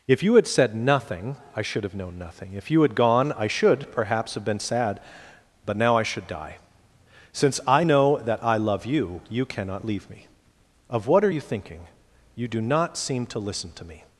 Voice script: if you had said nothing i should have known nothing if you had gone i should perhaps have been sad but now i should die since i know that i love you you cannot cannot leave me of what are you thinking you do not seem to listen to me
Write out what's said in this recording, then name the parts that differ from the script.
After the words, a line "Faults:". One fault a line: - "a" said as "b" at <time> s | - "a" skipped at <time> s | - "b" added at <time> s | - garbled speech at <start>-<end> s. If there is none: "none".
if you had said nothing i should have known nothing if you had gone i should perhaps have been sad but now i should die since i know that i love you you cannot leave me of what are you thinking you do not seem to listen to me
Faults:
- "cannot" skipped at 9.9 s